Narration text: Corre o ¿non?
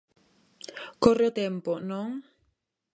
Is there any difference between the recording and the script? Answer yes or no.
yes